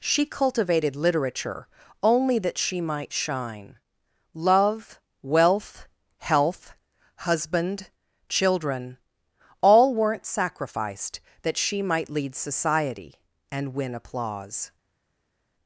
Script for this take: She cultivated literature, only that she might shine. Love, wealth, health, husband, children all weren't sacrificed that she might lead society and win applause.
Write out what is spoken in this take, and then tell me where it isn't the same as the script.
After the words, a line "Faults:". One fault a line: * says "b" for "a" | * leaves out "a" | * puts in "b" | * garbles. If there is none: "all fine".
She cultivated literature, only that she might shine. Love, wealth, health, husband, children all weren't sacrificed that she might lead society and win applause.
Faults:
all fine